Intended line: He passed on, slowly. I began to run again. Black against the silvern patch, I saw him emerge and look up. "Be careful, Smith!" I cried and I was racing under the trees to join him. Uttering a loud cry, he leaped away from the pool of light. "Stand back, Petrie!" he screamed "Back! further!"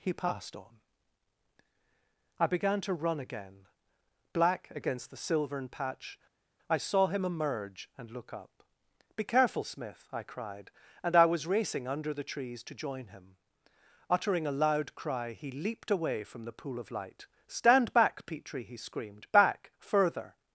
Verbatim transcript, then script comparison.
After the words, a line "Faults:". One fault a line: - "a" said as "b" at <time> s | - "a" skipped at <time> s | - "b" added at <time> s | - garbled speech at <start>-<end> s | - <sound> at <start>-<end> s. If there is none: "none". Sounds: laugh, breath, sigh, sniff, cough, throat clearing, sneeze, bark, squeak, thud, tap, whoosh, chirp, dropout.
He passed on. I began to run again. Black against the silvern patch, I saw him emerge and look up. "Be careful, Smith!" I cried and I was racing under the trees to join him. Uttering a loud cry, he leaped away from the pool of light. "Stand back, Petrie!" he screamed "Back! further!"
Faults:
- "slowly" skipped at 0.8 s